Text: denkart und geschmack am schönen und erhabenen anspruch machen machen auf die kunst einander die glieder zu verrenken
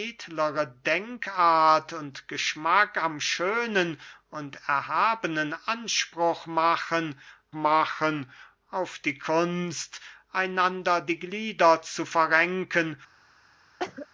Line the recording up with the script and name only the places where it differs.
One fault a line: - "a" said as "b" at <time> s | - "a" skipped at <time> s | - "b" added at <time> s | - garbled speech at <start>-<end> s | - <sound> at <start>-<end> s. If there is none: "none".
- cough at 13.8-14.1 s